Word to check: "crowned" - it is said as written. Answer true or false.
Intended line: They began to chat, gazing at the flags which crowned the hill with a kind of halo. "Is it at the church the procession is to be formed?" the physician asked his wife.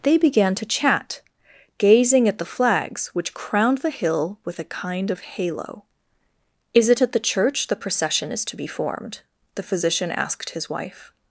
true